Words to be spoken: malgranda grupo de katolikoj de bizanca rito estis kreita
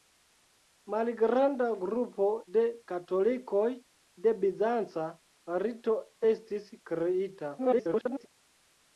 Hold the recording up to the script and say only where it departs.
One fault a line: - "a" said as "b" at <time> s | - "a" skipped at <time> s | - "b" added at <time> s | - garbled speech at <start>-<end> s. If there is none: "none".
- garbled speech at 7.6-8.3 s